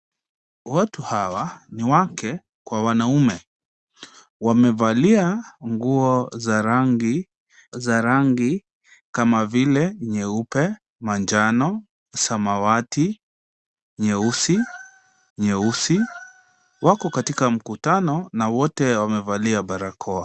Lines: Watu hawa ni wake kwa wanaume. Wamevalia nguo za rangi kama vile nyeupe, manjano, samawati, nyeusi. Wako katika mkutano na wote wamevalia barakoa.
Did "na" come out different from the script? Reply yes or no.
no